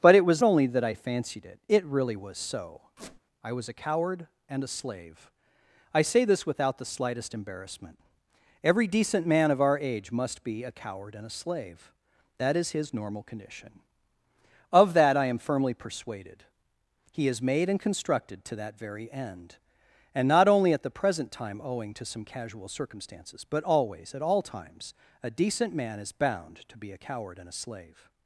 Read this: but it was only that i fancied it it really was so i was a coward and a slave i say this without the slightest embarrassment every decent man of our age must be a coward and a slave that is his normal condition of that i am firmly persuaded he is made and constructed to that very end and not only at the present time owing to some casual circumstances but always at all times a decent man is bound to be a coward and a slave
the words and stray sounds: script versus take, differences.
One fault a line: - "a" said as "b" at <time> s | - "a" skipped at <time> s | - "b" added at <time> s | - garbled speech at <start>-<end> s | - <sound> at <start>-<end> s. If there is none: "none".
- squeak at 3.0-3.2 s